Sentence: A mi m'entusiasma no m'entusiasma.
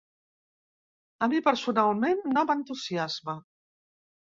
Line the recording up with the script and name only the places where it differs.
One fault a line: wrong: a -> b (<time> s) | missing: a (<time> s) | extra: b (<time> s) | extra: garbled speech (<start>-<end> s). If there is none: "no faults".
wrong: m'entusiasma -> personalment (1.5 s)